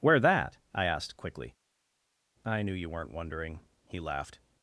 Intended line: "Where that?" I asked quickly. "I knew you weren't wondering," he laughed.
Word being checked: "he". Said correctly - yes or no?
yes